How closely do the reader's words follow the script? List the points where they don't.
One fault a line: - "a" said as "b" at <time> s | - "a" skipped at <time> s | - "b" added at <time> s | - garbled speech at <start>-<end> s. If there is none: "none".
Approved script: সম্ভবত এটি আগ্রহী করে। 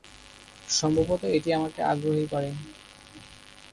- "আমাকে" added at 1.5 s